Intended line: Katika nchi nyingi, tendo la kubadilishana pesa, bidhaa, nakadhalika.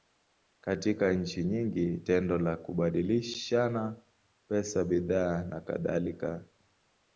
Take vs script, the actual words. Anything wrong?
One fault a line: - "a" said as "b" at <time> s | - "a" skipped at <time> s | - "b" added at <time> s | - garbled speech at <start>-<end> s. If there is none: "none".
none